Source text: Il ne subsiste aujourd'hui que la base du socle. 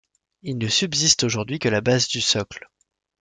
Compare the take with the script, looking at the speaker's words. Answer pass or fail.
pass